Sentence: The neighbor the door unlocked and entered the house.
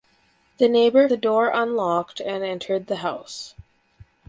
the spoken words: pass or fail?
pass